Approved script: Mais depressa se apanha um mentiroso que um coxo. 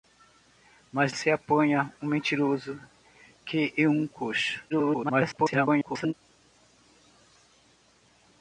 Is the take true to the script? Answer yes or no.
no